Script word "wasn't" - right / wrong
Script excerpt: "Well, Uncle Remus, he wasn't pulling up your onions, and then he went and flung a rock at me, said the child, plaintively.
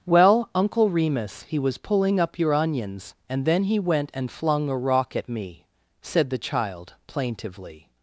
wrong